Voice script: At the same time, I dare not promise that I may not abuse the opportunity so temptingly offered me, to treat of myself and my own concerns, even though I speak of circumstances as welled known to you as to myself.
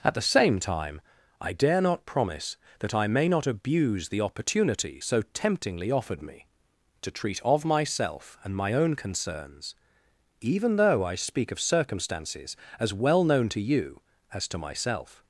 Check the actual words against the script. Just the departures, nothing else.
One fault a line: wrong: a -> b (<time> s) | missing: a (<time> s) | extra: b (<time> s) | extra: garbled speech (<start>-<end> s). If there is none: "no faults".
wrong: welled -> well (12.9 s)